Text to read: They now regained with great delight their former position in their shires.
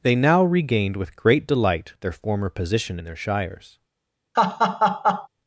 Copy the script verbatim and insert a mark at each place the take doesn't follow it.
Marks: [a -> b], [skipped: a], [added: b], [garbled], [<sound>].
They now regained with great delight their former position in their shires. [laugh]